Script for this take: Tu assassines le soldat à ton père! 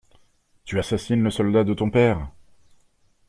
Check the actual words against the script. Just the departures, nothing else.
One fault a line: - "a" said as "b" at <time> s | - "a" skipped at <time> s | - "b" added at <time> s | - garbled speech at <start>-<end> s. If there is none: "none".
- "à" said as "de" at 1.6 s